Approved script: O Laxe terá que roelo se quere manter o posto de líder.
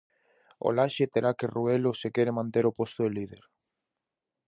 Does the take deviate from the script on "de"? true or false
false